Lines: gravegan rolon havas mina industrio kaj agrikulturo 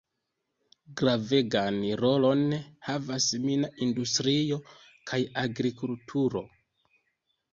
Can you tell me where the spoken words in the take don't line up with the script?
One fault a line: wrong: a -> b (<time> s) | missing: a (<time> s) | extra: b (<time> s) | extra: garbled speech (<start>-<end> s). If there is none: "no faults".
no faults